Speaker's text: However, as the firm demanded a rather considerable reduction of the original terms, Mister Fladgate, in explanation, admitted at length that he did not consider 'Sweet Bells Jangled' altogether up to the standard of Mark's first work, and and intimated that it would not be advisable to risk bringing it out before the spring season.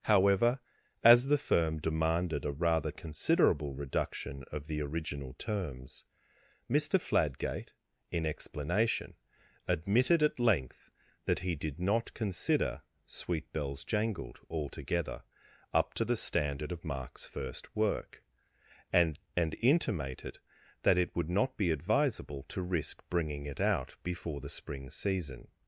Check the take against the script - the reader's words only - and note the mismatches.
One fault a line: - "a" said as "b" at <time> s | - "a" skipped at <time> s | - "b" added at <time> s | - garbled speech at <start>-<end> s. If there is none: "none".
none